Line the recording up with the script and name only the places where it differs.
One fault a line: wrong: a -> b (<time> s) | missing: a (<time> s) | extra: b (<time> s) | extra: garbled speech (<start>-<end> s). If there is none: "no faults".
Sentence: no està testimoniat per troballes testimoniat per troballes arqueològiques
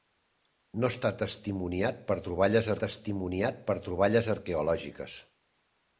no faults